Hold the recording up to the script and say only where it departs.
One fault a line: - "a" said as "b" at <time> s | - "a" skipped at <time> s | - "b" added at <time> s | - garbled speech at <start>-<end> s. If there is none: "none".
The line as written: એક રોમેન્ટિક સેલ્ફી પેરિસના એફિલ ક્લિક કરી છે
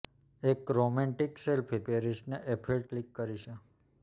none